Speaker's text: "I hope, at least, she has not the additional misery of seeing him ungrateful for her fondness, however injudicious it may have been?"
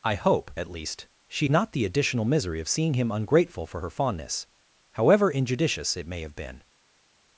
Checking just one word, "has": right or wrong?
wrong